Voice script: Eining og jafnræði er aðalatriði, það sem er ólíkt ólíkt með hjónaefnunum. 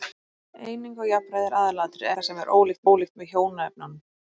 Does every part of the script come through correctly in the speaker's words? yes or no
yes